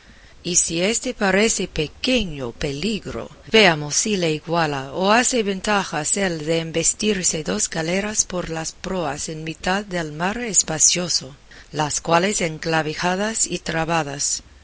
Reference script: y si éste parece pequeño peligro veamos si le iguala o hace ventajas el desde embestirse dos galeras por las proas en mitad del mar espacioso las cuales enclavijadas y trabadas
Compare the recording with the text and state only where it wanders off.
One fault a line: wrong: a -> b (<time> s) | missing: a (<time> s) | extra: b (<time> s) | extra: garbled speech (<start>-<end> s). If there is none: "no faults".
wrong: desde -> de (6.5 s)